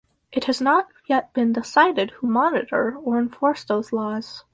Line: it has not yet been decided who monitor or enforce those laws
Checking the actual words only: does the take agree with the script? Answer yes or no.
yes